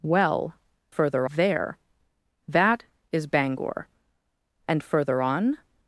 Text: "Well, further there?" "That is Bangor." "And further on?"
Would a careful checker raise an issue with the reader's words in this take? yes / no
no